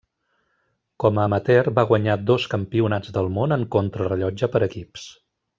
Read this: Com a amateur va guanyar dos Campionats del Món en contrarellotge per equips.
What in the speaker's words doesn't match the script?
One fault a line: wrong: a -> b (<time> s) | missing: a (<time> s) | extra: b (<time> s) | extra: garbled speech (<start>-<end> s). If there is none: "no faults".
no faults